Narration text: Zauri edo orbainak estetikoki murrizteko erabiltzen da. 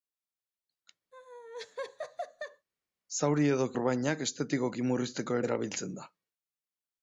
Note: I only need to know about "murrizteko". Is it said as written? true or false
true